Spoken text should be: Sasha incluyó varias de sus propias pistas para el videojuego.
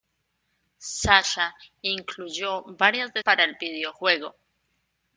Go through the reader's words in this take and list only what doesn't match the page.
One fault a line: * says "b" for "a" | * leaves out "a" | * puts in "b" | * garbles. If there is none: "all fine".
* leaves out "sus propias pistas"